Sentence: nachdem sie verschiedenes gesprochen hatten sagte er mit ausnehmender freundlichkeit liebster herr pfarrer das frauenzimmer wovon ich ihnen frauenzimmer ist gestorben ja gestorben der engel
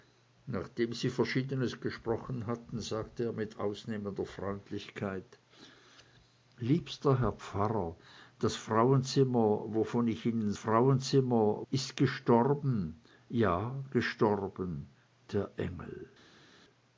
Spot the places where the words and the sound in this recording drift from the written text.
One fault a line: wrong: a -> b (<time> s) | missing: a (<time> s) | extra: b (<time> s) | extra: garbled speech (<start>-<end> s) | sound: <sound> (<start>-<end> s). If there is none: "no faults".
no faults